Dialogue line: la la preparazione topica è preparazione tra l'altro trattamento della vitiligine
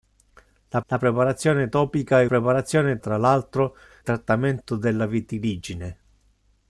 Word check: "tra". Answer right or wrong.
right